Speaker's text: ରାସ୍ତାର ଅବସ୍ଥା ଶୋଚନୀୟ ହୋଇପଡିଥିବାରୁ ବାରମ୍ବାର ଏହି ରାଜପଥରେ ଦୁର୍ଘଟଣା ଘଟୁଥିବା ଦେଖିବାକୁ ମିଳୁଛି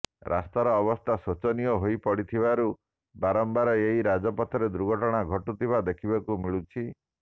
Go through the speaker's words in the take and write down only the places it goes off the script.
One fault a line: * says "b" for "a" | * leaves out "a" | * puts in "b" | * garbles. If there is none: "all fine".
all fine